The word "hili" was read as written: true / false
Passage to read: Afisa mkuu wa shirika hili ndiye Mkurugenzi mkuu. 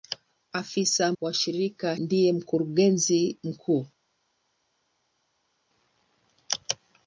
false